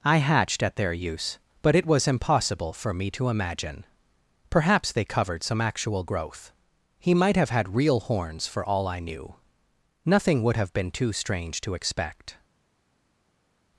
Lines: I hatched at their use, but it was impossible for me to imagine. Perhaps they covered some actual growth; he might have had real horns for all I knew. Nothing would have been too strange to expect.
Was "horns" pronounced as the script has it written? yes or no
yes